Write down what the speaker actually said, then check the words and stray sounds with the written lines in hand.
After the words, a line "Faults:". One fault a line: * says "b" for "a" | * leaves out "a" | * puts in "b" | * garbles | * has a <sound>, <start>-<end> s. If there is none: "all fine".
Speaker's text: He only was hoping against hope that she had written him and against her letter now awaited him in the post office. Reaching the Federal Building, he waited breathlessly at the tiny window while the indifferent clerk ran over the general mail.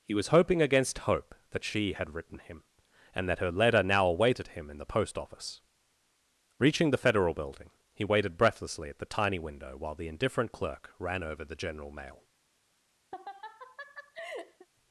He was hoping against hope that she had written him and that her letter now awaited him in the post office. Reaching the Federal Building, he waited breathlessly at the tiny window while the indifferent clerk ran over the general mail.
Faults:
* leaves out "only"
* says "that" for "against"
* has a laugh, 13.1-14.7 s